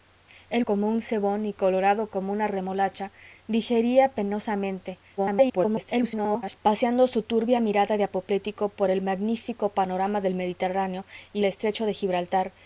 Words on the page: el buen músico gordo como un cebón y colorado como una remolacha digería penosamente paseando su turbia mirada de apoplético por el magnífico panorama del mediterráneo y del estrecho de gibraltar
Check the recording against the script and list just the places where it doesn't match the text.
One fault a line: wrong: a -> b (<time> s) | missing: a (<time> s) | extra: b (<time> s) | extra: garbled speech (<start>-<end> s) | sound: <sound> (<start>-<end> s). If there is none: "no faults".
missing: buen músico gordo (0.7 s)
extra: garbled speech (5.2-6.6 s)
missing: del (11.4 s)